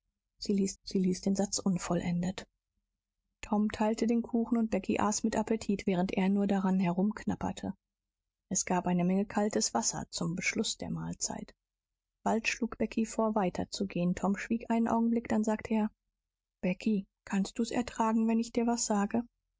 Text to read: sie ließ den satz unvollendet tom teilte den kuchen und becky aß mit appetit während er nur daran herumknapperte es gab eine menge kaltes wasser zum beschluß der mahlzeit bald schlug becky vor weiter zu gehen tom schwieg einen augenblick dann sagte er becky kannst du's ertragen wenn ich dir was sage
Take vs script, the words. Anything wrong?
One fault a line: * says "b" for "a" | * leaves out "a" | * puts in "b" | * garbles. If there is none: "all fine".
* puts in "sie ließ"